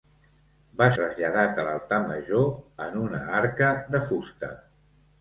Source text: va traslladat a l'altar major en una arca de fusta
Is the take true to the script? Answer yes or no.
yes